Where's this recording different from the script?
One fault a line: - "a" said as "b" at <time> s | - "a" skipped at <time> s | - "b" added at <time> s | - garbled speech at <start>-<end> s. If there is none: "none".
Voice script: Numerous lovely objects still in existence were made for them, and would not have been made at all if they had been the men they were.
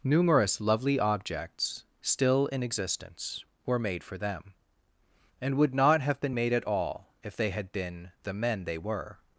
none